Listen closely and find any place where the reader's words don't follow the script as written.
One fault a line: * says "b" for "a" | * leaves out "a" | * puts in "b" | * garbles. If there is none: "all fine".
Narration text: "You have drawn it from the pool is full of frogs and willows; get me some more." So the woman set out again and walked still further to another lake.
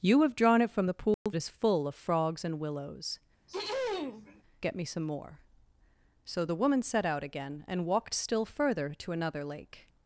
all fine